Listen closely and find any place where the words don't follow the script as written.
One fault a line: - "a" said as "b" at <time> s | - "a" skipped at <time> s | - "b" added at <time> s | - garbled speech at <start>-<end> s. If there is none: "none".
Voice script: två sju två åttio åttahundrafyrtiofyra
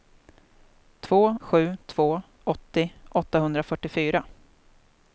none